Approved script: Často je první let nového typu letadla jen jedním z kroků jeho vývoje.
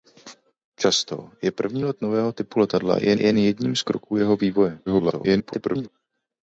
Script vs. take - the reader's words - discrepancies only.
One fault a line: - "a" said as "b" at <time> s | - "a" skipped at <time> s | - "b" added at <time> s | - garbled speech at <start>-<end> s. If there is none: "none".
- "jen" added at 3.2 s
- garbled speech at 4.9-5.9 s